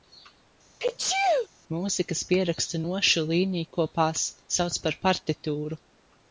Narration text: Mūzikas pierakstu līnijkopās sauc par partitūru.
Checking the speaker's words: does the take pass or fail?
fail